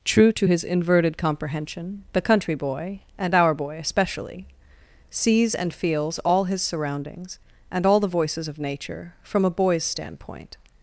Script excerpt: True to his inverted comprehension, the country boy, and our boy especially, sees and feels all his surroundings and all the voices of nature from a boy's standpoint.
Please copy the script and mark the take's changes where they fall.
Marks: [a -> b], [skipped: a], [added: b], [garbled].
True to his inverted comprehension, the country boy, and our boy especially, sees and feels all his surroundings and all the voices of nature from a boy's standpoint.